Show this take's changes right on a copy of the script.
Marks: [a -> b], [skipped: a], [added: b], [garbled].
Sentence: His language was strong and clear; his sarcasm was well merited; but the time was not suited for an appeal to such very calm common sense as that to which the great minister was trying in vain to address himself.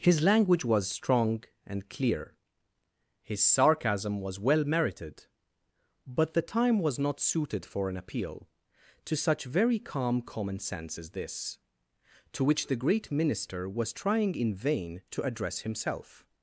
His language was strong and clear; his sarcasm was well merited; but the time was not suited for an appeal to such very calm common sense as [that -> this] to which the great minister was trying in vain to address himself.